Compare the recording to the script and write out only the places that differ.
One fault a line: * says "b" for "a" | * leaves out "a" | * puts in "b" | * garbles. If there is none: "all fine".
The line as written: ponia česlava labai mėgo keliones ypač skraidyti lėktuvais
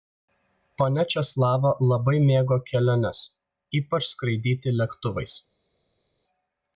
all fine